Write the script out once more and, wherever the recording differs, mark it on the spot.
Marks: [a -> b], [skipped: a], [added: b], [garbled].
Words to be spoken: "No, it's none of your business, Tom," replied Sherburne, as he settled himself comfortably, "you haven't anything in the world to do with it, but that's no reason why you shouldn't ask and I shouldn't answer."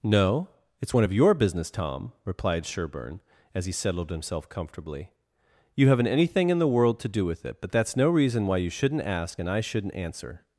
"No, it's [none -> one] of your business, Tom," replied Sherburne, as he settled himself comfortably, "you haven't anything in the world to do with it, but that's no reason why you shouldn't ask and I shouldn't answer."